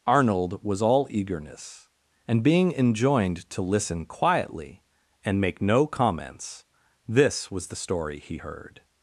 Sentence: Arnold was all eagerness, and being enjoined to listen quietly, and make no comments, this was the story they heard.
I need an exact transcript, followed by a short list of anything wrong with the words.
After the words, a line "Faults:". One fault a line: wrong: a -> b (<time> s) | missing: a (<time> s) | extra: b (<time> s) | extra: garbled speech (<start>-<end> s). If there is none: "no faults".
Arnold was all eagerness, and being enjoined to listen quietly, and make no comments, this was the story he heard.
Faults:
wrong: they -> he (8.2 s)